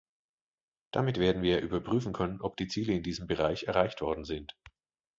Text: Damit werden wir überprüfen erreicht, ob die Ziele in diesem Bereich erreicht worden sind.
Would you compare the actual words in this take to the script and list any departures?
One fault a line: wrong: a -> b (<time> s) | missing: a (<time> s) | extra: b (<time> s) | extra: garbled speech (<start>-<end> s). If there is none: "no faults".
wrong: erreicht -> können (2.1 s)